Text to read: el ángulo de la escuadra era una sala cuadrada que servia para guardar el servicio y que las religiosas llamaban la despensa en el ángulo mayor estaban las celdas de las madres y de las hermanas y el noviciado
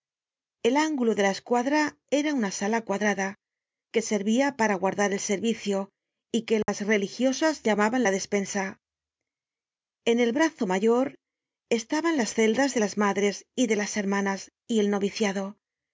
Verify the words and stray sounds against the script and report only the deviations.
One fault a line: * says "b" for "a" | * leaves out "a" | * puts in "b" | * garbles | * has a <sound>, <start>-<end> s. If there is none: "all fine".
* has a dropout, 6.6-6.7 s
* says "brazo" for "ángulo"